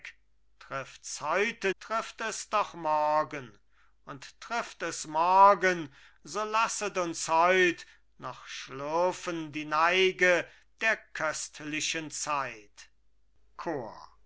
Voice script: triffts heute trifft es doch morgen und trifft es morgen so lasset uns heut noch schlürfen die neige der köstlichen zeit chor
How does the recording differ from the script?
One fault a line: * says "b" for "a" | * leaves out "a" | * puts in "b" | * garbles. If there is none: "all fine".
all fine